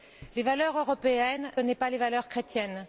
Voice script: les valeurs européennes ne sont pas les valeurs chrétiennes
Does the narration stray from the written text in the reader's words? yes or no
no